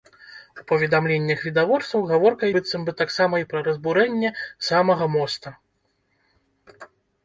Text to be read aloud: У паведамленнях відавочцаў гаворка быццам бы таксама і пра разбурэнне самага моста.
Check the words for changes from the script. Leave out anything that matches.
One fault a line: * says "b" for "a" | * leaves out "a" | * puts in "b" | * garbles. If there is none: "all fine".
all fine